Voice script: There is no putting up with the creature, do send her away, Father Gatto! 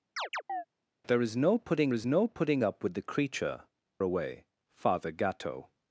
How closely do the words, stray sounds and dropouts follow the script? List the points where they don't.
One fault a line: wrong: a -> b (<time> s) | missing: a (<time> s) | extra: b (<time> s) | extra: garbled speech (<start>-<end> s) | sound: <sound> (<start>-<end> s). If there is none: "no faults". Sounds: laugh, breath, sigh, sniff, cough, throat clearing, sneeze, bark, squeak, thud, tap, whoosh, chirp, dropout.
sound: chirp (0.2-0.6 s)
extra: is no putting (1.9 s)
missing: do send her (3.6 s)